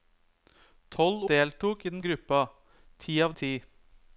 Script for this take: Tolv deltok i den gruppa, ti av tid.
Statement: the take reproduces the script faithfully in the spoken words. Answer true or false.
true